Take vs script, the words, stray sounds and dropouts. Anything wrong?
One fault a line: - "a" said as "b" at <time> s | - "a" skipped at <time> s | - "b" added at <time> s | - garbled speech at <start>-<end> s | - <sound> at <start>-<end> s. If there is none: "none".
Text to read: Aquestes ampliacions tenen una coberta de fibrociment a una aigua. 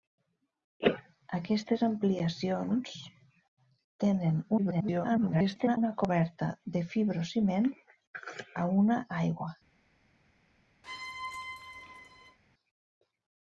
- garbled speech at 4.6-5.8 s
- squeak at 10.8-12.4 s